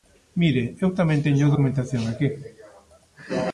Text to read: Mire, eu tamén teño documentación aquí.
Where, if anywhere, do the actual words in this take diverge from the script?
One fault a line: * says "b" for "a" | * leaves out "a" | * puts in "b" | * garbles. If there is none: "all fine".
all fine